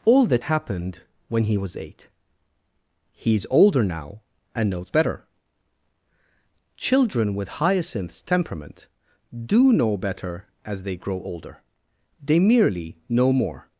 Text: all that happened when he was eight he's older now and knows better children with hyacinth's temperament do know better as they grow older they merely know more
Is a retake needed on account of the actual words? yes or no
no